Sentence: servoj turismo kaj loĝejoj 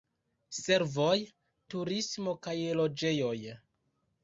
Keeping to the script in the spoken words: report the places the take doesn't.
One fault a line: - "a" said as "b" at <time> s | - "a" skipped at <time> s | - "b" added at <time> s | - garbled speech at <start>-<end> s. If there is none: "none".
none